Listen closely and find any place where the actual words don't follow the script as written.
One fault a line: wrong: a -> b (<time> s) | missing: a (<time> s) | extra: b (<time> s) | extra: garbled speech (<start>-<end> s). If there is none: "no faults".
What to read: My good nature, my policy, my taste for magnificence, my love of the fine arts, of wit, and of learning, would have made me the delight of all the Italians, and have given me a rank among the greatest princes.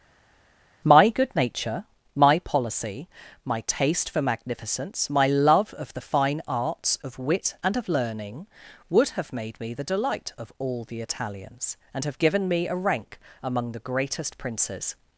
no faults